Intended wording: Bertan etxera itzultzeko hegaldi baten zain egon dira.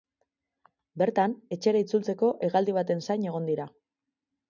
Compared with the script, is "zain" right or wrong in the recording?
right